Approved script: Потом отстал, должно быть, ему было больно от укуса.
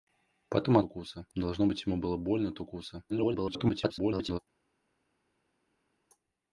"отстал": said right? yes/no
no